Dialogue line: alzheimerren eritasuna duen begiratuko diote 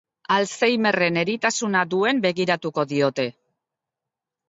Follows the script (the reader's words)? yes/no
yes